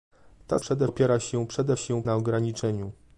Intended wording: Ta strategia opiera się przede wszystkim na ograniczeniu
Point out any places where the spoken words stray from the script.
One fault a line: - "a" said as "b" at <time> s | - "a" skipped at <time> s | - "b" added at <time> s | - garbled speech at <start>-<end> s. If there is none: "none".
- "strategia" said as "przede" at 0.6 s
- "wszystkim" said as "się" at 1.7 s